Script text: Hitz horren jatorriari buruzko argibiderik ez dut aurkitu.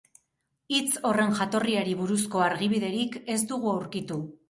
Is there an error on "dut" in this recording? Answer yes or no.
yes